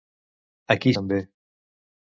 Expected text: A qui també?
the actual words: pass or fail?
pass